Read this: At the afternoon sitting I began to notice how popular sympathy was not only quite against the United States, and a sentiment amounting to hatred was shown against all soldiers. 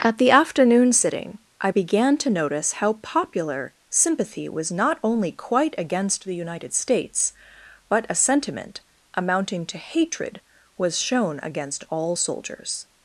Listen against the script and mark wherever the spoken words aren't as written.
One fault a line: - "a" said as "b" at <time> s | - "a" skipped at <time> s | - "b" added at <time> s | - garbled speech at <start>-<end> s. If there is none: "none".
- "and" said as "but" at 7.9 s